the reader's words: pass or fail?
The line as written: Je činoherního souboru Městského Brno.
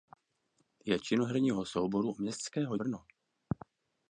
pass